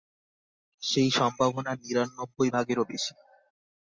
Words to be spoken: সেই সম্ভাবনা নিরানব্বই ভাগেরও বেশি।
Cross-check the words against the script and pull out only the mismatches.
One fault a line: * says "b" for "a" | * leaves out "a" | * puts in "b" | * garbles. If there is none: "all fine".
all fine